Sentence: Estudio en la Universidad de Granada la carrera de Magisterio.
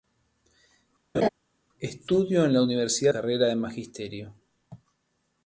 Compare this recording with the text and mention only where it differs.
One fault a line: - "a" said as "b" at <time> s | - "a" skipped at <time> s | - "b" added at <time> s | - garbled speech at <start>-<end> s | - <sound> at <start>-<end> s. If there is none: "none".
- laugh at 1.1-1.3 s
- "de Granada la" skipped at 3.1 s